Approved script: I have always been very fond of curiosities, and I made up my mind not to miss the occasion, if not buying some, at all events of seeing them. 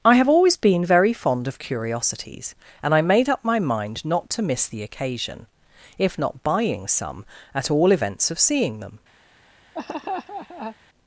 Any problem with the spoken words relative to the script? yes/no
no